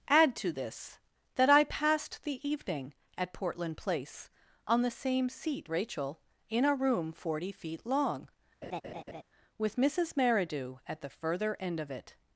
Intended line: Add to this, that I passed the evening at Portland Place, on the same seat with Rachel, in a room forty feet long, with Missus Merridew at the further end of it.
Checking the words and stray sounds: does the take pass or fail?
fail